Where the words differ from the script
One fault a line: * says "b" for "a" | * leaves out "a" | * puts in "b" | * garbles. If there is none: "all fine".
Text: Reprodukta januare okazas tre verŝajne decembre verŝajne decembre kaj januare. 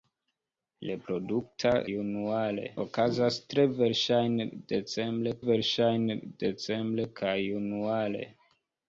all fine